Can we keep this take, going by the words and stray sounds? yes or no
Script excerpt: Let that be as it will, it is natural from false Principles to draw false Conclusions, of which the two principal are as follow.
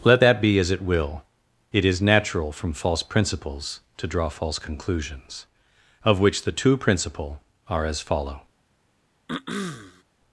no